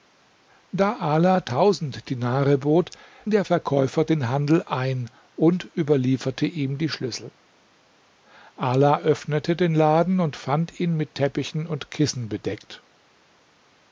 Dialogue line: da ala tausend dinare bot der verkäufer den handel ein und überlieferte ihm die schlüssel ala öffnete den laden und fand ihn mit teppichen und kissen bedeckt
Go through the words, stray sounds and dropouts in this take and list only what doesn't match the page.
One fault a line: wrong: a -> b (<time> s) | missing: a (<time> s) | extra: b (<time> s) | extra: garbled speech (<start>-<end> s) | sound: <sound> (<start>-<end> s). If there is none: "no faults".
no faults